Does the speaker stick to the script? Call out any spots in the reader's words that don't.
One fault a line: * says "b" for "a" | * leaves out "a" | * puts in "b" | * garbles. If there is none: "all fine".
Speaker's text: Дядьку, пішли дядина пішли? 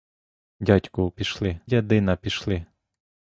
all fine